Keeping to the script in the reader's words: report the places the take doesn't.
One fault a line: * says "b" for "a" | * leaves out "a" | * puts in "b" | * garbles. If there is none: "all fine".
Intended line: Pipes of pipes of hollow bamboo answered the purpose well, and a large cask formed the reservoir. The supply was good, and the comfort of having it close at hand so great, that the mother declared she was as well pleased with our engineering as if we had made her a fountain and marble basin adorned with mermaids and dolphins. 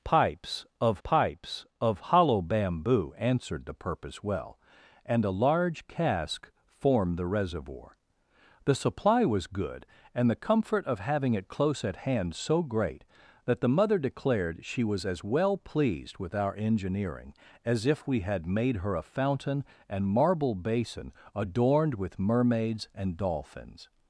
all fine